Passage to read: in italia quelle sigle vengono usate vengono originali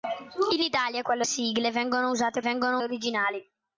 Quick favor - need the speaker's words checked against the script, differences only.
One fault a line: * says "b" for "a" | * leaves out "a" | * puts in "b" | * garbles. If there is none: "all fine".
all fine